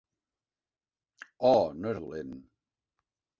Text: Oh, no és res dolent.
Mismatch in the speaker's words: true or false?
true